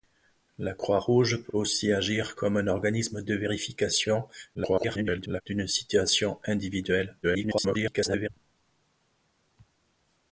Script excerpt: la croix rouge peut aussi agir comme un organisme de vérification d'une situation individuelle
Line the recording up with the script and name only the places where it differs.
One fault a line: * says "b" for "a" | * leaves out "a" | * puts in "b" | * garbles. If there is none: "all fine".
* puts in "peut"
* garbles
* garbles